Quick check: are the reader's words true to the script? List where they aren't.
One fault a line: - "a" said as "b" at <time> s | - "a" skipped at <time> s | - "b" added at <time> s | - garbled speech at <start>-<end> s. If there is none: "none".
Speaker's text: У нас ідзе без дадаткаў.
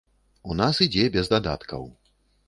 none